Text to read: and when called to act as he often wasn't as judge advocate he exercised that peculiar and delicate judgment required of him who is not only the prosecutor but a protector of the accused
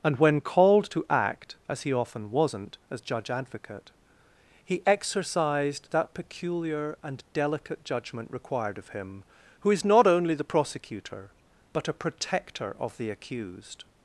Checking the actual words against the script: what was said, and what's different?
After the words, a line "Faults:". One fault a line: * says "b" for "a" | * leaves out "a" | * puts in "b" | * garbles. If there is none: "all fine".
and when called to act as he often wasn't as judge advocate he exercised that peculiar and delicate judgment required of him who is not only the prosecutor but a protector of the accused
Faults:
all fine